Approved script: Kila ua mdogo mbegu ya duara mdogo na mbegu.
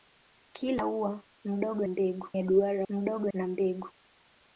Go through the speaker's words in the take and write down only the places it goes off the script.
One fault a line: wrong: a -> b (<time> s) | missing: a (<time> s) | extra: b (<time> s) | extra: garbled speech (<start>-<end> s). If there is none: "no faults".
no faults